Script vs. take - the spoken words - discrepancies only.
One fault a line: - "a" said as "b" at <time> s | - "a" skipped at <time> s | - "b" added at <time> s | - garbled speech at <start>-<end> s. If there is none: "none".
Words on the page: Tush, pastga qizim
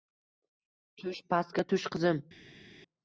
- "tush" added at 1.7 s